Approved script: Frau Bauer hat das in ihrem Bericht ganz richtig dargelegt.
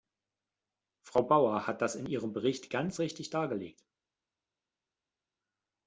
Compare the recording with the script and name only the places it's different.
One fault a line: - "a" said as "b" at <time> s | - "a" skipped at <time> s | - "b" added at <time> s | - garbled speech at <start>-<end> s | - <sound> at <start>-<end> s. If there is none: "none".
none